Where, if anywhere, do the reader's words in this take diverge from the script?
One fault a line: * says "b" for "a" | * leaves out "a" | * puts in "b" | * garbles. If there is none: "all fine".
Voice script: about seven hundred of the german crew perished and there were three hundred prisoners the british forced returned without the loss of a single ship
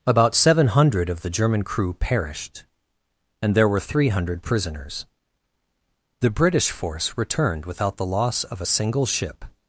* says "force" for "forced"